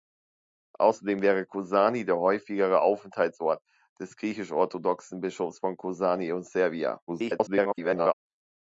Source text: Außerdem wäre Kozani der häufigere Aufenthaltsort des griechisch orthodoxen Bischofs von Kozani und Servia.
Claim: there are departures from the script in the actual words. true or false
true